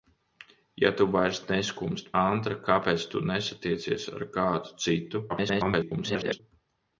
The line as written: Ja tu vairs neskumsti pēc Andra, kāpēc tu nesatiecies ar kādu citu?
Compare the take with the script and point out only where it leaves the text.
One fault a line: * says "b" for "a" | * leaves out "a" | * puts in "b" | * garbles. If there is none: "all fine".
* leaves out "pēc"
* garbles